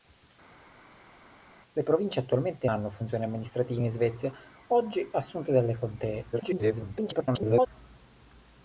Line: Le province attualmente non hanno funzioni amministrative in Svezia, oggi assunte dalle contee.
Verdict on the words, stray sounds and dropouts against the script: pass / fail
fail